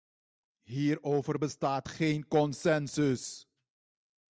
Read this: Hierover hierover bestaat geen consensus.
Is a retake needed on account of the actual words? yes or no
yes